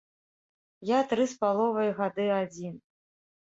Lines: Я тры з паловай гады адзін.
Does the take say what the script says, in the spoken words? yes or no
yes